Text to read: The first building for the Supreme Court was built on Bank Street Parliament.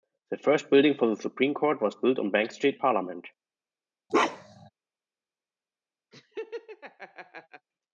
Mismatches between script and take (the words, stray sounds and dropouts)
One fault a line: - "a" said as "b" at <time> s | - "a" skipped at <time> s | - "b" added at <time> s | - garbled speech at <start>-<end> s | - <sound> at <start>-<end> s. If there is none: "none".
- bark at 4.1-4.7 s
- laugh at 6.1-7.7 s